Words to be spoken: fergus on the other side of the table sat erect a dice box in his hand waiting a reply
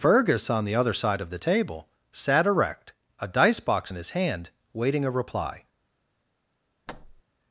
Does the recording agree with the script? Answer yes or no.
yes